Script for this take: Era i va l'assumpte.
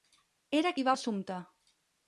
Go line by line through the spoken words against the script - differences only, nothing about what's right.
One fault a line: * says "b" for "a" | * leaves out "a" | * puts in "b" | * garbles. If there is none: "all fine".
all fine